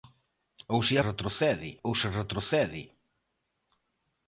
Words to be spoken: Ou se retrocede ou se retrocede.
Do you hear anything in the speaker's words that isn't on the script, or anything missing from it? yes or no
no